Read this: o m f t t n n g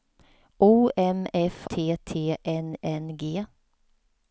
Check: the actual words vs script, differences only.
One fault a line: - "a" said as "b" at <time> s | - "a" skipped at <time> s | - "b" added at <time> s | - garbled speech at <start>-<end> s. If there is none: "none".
none